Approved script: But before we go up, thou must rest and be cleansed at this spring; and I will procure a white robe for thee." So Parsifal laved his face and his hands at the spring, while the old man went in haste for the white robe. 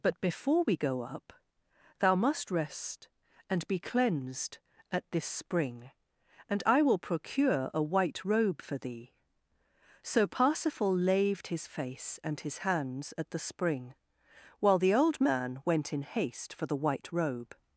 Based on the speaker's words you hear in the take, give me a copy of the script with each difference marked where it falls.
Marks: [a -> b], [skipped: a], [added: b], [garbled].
But before we go up, thou must rest and be cleansed at this spring; and I will procure a white robe for thee." So Parsifal laved his face and his hands at the spring, while the old man went in haste for the white robe.